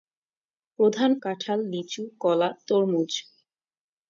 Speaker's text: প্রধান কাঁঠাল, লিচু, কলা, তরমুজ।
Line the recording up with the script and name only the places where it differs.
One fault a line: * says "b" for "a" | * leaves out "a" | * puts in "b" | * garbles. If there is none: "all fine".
all fine